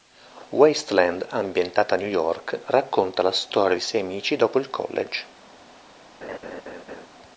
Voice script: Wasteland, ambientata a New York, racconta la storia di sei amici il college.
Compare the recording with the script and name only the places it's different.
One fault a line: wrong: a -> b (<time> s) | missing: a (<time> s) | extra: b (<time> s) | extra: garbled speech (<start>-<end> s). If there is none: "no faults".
extra: dopo (4.4 s)